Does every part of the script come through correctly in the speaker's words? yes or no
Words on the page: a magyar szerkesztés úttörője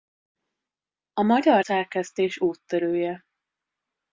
yes